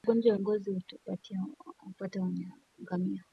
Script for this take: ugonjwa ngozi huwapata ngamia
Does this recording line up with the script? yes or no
yes